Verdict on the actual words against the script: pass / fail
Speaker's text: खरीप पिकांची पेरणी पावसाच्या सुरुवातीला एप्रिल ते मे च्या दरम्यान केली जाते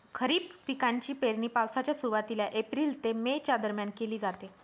pass